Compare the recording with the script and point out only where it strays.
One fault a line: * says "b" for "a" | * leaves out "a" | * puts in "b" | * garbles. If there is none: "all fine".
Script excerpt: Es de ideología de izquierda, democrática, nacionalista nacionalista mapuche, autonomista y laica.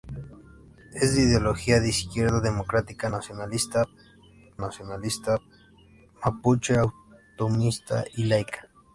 all fine